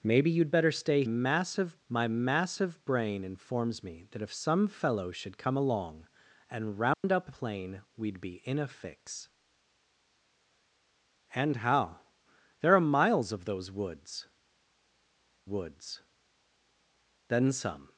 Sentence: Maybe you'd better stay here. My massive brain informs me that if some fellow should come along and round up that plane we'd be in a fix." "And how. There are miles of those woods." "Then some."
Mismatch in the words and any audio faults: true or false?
true